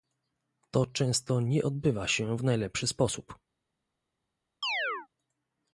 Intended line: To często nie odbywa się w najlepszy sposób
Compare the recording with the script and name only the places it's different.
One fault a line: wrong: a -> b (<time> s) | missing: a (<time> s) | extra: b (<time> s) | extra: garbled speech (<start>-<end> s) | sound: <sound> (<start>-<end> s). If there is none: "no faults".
sound: chirp (4.6-5.1 s)